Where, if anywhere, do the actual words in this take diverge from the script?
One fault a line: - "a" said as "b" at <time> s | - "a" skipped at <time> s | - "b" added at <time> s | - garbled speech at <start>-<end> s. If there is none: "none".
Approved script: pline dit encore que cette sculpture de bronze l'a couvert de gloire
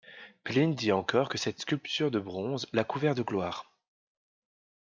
none